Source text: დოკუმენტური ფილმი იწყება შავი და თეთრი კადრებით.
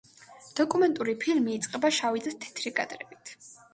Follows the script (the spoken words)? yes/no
yes